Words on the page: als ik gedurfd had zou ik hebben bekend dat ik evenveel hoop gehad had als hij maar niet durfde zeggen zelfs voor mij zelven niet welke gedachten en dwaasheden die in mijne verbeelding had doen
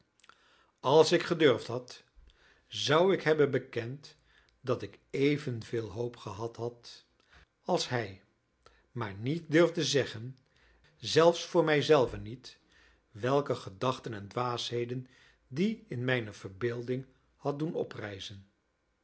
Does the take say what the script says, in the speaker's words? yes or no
yes